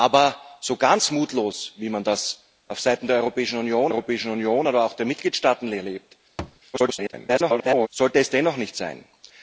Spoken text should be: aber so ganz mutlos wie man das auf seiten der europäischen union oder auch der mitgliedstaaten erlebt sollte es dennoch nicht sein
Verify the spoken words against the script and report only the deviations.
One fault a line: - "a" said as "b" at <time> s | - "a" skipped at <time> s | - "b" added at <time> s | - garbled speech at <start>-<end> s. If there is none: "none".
- "europäischen union" added at 3.9 s
- garbled speech at 6.7-7.9 s